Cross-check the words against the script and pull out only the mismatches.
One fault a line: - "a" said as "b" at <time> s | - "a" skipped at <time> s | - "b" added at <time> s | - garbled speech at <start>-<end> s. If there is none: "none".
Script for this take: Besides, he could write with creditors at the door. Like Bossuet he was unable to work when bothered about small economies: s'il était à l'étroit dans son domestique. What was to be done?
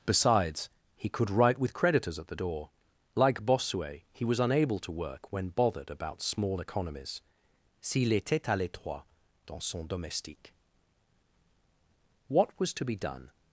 none